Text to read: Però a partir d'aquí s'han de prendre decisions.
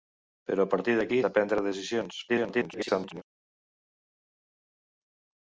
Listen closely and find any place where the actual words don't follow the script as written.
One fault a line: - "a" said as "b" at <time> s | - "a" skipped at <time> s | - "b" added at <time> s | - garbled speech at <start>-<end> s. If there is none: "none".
- "s'han" skipped at 1.2 s
- garbled speech at 2.3-3.2 s